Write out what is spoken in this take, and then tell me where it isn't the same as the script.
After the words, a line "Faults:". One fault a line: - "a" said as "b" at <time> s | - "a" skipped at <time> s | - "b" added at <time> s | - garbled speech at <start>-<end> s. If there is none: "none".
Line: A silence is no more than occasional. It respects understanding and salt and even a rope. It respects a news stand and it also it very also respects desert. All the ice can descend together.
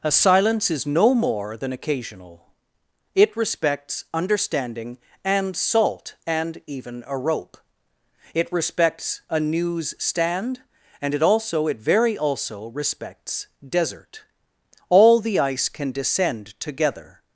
A silence is no more than occasional. It respects understanding and salt and even a rope. It respects a news stand and it also it very also respects desert. All the ice can descend together.
Faults:
none